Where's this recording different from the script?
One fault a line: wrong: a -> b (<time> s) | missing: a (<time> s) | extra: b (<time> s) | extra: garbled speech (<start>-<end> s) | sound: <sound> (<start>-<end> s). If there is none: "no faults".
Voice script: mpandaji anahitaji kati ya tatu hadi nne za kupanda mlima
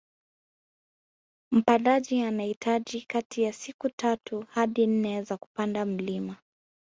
extra: siku (3.5 s)